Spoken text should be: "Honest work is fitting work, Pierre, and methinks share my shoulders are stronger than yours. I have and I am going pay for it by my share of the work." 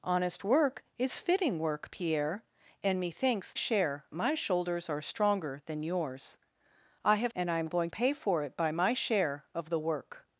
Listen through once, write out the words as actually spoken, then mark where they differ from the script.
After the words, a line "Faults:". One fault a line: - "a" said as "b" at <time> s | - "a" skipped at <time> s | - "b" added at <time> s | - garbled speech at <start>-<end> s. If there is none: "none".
"Honest work is fitting work, Pierre, and methinks share my shoulders are stronger than yours. I have and I am going pay for it by my share of the work."
Faults:
none